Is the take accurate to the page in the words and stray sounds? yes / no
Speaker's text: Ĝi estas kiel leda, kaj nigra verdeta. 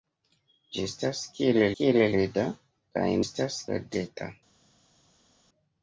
no